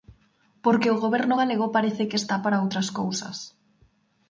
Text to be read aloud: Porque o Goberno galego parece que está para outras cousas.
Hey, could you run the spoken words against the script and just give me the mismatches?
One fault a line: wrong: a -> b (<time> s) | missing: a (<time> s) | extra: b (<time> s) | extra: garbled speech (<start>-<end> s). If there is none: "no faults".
no faults